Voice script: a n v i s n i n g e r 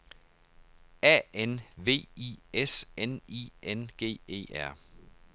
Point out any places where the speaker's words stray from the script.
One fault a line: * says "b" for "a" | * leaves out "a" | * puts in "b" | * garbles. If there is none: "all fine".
all fine